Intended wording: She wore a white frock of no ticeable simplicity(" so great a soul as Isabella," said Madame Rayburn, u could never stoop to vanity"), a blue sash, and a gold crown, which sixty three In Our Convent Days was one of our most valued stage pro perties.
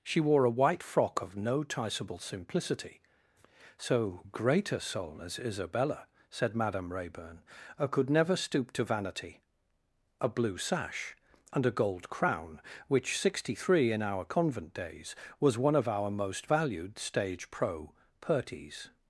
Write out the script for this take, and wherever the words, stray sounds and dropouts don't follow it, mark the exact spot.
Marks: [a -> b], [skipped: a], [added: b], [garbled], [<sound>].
She wore a white frock of no ticeable simplicity(" so great a soul as Isabella," said Madame Rayburn, [skipped: u] could never stoop to vanity"), a blue sash, and a gold crown, which sixty three In Our Convent Days was one of our most valued stage pro perties.